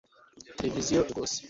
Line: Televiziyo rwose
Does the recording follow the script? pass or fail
pass